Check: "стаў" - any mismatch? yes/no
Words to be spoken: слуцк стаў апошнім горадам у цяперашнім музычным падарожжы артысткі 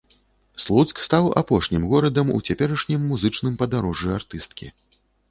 no